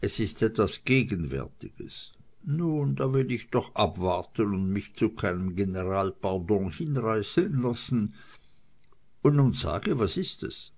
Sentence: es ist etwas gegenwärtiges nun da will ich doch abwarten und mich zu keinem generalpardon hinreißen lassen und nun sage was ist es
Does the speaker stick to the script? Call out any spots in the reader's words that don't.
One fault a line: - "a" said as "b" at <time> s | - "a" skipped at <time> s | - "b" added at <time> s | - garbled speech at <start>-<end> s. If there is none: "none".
none